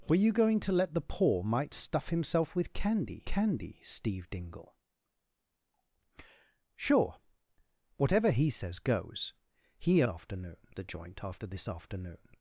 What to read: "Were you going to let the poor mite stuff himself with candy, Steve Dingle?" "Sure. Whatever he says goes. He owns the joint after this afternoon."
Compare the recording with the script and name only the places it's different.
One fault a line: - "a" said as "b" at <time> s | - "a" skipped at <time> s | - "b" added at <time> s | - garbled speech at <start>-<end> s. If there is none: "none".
- "candy" added at 3.2 s
- "owns" said as "afternoon" at 10.1 s